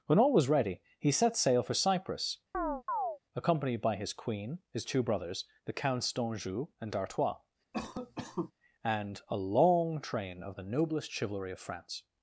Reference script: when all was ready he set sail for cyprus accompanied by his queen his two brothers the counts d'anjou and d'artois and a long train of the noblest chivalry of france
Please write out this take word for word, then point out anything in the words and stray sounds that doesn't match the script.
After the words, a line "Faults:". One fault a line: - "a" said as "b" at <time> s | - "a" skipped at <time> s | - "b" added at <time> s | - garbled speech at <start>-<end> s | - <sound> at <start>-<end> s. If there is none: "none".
when all was ready he set sail for cyprus accompanied by his queen his two brothers the counts d'anjou and d'artois and a long train of the noblest chivalry of france
Faults:
- chirp at 2.5-3.2 s
- cough at 7.7-8.5 s